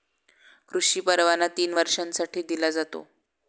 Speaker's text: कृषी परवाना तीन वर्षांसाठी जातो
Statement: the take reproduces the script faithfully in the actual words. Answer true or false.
false